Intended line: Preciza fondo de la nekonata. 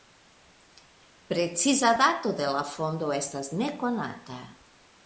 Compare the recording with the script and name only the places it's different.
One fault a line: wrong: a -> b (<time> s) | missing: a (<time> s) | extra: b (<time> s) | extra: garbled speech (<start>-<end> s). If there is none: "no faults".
wrong: fondo -> dato (2.0 s)
extra: fondo estas (2.6 s)